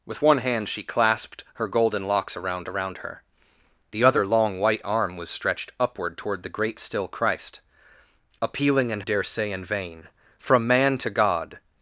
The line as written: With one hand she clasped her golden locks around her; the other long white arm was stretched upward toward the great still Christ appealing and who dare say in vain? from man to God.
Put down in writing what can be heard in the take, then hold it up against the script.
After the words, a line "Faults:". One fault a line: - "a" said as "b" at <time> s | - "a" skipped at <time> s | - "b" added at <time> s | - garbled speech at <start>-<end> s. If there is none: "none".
With one hand she clasped her golden locks around around her; the other long white arm was stretched upward toward the great still Christ appealing and dare say in vain? from man to God.
Faults:
- "around" added at 2.7 s
- "who" skipped at 9.0 s